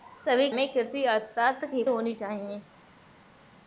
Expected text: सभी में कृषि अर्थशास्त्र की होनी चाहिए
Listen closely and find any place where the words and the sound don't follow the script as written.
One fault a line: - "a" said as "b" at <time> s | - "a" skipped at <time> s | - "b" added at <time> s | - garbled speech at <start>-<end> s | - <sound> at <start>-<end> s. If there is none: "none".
none